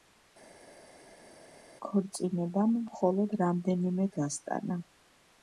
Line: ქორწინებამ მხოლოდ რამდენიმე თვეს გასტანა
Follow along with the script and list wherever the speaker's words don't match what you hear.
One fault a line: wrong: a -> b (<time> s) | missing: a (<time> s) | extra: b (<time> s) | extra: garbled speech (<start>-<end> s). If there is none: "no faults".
missing: თვეს (4.1 s)